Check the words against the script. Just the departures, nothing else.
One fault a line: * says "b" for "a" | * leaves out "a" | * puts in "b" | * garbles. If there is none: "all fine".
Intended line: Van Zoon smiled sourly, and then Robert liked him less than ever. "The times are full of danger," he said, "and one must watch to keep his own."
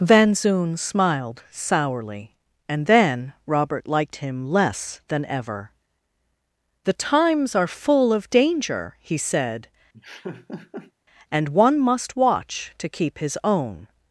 all fine